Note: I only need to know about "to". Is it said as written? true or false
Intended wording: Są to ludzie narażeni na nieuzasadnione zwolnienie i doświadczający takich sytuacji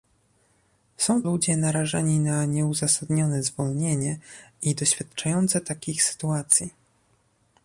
false